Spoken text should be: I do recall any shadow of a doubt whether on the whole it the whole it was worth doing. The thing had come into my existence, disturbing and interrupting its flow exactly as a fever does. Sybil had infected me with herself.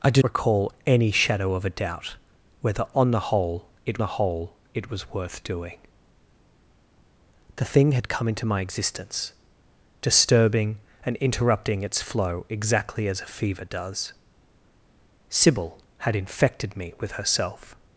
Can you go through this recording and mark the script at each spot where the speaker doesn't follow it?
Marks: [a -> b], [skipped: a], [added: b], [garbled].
I do recall any shadow of a doubt whether on the whole it the whole it was worth doing. The thing had come into my existence, disturbing and interrupting its flow exactly as a fever does. Sybil had infected me with herself.